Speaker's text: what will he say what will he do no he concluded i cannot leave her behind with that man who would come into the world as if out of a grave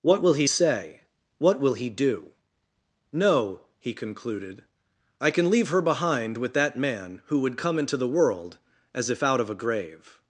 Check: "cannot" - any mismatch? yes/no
yes